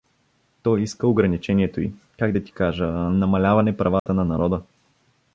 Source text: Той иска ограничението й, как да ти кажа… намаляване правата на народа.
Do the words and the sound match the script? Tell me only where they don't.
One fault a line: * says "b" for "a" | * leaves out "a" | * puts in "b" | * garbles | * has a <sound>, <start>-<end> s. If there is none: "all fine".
* has a dropout, 4.0-4.1 s